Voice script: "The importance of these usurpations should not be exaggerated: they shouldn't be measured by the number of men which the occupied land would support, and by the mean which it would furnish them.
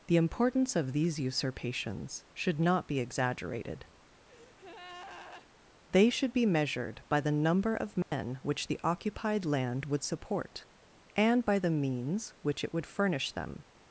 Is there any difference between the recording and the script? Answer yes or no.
yes